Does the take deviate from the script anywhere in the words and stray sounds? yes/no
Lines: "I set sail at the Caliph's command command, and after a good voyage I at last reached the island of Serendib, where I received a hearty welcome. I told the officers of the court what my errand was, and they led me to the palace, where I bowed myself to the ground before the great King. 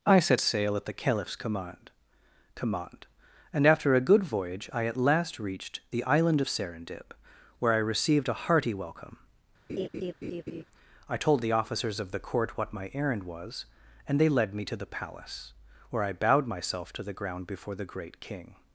yes